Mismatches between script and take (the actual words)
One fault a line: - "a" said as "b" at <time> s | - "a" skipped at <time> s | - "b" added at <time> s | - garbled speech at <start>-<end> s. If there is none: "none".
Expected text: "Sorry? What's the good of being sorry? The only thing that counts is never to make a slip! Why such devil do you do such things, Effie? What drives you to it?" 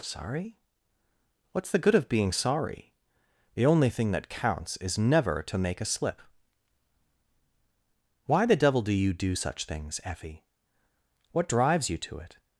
- "such" said as "the" at 8.4 s